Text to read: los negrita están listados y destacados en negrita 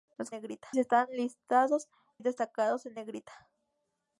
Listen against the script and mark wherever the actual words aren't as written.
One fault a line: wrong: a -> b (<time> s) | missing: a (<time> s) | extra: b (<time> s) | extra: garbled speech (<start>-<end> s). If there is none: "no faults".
no faults